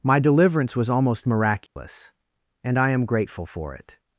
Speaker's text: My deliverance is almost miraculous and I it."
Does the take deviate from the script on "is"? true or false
true